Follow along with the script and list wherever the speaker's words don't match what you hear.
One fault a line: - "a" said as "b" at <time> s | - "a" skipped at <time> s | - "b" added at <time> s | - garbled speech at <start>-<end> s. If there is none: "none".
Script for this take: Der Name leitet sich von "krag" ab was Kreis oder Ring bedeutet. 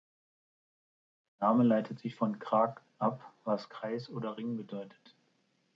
none